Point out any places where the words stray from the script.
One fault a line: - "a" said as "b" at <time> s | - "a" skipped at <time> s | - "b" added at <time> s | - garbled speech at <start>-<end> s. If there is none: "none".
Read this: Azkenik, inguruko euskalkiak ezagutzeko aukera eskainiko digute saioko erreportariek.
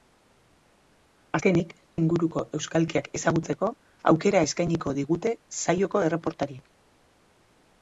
none